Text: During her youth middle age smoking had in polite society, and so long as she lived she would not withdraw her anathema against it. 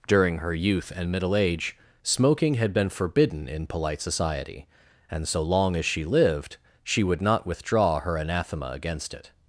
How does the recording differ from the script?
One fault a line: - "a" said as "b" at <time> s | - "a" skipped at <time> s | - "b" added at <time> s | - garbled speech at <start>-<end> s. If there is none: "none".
- "and" added at 0.9 s
- "been forbidden" added at 2.7 s